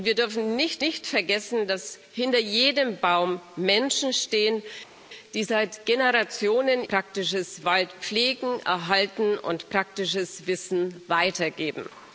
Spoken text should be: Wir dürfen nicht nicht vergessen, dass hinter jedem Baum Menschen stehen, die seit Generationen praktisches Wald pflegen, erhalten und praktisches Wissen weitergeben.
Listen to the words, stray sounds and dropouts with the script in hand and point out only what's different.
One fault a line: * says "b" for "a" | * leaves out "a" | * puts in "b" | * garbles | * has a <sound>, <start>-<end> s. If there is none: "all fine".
all fine